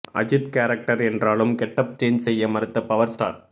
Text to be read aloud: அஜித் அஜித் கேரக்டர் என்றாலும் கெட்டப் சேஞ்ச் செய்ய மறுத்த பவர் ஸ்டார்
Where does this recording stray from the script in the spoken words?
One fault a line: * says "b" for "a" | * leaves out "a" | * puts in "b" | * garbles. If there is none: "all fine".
* leaves out "அஜித்"